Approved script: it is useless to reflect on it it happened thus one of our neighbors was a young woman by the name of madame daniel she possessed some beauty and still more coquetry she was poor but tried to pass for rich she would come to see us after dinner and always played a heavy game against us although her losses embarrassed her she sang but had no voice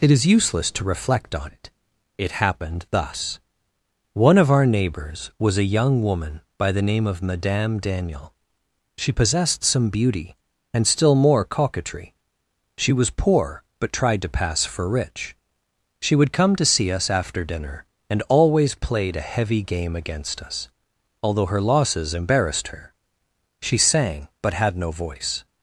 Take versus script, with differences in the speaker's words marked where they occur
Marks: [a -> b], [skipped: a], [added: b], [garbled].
it is useless to reflect on it it happened thus one of our neighbors was a young woman by the name of madame daniel she possessed some beauty and still more coquetry she was poor but tried to pass for rich she would come to see us after dinner and always played a heavy game against us although her losses embarrassed her she sang but had no voice